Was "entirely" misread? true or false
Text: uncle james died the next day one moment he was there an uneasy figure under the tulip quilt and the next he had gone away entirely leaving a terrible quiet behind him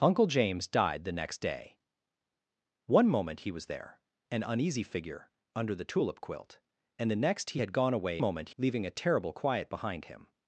true